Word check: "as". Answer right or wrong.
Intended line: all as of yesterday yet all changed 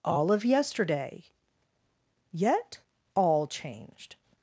wrong